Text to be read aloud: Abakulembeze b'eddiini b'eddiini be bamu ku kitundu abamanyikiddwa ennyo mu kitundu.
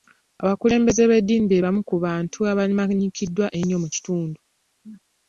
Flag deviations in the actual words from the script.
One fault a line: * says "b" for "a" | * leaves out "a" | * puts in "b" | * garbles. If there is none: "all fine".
* leaves out "b'eddiini"
* says "bantu" for "kitundu"